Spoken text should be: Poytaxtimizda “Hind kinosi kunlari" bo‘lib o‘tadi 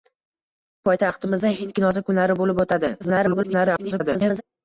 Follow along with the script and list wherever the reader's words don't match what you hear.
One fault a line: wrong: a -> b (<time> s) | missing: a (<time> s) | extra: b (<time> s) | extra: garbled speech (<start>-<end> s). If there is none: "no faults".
extra: garbled speech (3.0-4.4 s)